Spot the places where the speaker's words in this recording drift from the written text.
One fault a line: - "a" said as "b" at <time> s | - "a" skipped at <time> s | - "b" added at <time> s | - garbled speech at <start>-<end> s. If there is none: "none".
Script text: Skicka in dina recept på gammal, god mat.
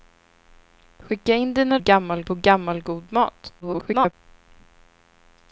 - "recept" said as "gammal" at 1.8 s
- garbled speech at 3.6-4.1 s